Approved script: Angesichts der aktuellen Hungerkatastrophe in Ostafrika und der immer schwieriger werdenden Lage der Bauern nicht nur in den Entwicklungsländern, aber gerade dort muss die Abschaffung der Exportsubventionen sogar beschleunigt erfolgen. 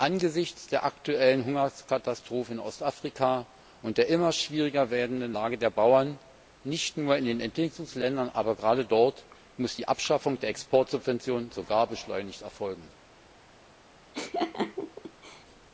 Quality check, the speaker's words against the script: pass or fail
pass